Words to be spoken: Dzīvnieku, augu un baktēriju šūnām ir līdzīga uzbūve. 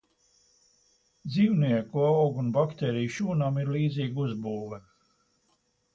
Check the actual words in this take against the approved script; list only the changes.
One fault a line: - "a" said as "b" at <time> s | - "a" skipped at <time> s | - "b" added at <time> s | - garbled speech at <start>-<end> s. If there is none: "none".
none